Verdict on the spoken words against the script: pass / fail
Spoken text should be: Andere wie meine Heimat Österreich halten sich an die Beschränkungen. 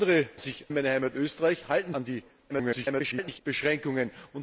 fail